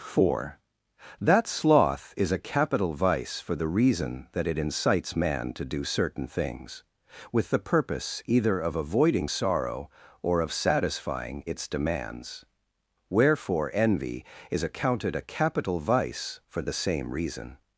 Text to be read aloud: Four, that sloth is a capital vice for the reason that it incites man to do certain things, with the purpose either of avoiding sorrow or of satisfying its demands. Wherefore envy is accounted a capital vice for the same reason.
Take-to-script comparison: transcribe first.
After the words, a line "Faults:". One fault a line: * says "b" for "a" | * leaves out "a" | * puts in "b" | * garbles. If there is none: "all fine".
Four, that sloth is a capital vice for the reason that it incites man to do certain things, with the purpose either of avoiding sorrow or of satisfying its demands. Wherefore envy is accounted a capital vice for the same reason.
Faults:
all fine